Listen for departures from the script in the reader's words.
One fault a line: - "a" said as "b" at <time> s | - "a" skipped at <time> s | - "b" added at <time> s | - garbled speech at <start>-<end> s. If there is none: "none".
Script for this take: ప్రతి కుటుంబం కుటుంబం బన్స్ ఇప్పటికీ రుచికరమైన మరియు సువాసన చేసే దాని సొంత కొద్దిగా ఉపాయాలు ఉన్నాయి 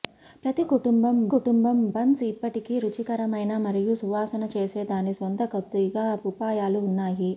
none